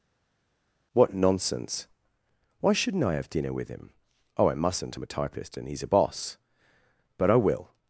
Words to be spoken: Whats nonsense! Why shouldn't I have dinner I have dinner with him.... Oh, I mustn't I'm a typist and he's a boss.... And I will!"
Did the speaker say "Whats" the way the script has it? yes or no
no